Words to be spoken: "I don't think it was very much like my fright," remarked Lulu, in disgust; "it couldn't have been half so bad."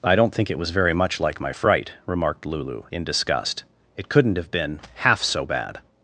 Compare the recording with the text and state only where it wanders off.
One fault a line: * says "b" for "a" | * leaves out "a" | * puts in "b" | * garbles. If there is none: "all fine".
all fine